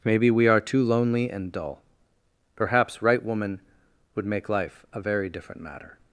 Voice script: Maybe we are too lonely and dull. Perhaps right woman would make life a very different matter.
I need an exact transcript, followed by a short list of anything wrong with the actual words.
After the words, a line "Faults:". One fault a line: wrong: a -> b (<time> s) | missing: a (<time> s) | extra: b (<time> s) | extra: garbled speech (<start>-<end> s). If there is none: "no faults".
Maybe we are too lonely and dull. Perhaps right woman would make life a very different matter.
Faults:
no faults